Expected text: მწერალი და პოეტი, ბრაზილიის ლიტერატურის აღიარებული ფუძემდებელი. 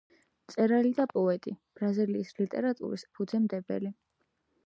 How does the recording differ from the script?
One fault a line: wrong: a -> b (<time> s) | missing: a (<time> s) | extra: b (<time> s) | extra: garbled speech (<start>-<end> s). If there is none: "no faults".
missing: აღიარებული (3.0 s)